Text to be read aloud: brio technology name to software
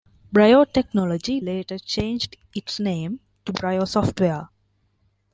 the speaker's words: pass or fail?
fail